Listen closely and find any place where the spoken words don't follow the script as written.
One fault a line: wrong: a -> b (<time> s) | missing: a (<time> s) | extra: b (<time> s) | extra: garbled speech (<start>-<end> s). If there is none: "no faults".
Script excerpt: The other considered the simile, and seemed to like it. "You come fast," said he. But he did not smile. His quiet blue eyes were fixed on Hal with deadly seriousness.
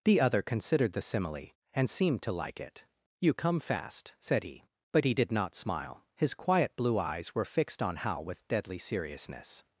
no faults